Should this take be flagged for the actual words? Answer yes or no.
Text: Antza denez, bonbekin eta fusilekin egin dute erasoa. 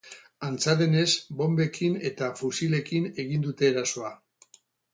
no